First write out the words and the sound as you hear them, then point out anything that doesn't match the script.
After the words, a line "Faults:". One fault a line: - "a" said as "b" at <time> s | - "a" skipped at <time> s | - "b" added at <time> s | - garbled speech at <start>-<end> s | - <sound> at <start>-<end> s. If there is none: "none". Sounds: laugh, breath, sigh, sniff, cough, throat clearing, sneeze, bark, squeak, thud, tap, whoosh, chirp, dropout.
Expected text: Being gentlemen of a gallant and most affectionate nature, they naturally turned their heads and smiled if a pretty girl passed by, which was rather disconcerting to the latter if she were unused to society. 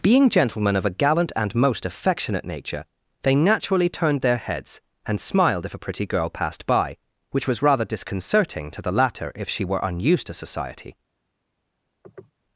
Being gentlemen of a gallant and most affectionate nature, they naturally turned their heads and smiled if a pretty girl passed by, which was rather disconcerting to the latter if she were unused to society.
Faults:
- sniff at 12.0-12.3 s